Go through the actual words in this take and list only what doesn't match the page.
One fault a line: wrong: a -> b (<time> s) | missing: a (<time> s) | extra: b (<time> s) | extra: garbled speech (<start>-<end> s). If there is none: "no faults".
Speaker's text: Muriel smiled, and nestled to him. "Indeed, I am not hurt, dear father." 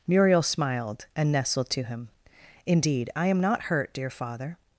no faults